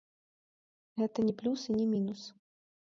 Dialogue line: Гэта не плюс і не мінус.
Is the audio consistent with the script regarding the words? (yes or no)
yes